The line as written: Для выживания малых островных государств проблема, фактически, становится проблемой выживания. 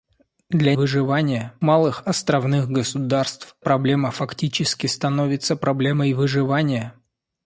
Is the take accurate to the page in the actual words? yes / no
yes